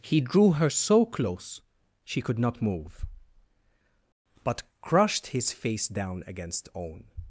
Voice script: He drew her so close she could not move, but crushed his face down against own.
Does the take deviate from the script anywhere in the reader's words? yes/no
no